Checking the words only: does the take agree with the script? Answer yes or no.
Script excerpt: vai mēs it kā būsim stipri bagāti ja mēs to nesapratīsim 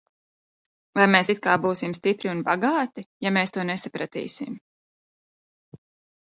no